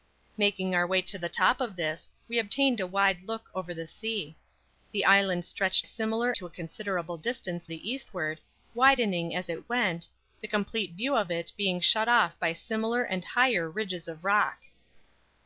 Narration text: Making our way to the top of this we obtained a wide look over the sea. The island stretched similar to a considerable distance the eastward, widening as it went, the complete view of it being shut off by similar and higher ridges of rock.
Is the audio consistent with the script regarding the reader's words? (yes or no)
yes